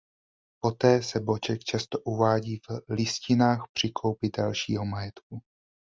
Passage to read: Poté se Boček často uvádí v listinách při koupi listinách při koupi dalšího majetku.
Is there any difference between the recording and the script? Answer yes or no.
yes